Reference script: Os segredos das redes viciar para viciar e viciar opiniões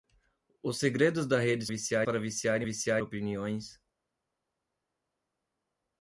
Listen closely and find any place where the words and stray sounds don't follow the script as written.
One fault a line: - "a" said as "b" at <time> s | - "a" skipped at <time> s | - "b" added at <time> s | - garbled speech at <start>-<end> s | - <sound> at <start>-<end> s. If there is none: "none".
none